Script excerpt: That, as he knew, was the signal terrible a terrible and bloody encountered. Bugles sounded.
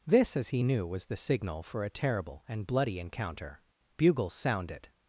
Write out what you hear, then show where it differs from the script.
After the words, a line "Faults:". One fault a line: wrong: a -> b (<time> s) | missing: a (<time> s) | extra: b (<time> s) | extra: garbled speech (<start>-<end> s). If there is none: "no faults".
This, as he knew, was the signal for a terrible and bloody encounter. Bugles sounded.
Faults:
wrong: That -> This (0.1 s)
wrong: terrible -> for (1.6 s)
wrong: encountered -> encounter (3.0 s)